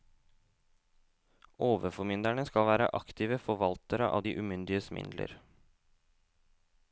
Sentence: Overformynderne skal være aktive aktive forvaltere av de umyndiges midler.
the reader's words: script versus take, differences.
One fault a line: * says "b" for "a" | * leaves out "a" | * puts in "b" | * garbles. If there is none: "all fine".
* leaves out "aktive"